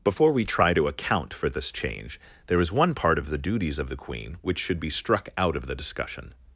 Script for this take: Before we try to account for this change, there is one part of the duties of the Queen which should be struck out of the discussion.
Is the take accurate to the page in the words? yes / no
yes